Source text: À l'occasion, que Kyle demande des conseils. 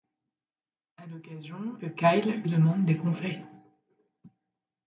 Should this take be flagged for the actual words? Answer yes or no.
no